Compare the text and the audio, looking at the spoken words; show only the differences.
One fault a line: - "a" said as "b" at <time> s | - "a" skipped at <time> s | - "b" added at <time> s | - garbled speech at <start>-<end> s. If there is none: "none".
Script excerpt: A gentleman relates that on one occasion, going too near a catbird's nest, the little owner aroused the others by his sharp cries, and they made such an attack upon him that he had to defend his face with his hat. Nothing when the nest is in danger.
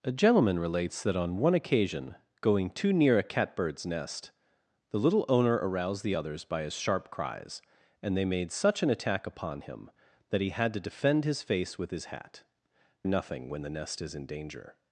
none